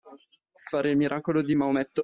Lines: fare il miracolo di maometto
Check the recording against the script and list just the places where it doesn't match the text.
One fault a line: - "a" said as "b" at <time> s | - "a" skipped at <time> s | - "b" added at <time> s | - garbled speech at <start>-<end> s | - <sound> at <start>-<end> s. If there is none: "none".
none